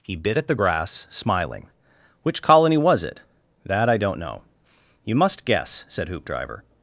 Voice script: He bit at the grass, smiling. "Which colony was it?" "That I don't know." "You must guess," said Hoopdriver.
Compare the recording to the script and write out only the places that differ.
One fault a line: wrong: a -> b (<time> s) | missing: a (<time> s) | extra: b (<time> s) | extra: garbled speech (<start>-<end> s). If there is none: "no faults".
no faults